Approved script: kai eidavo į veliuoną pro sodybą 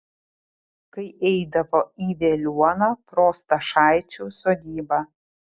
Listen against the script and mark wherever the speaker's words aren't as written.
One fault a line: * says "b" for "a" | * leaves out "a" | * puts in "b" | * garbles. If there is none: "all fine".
* puts in "stašaičių"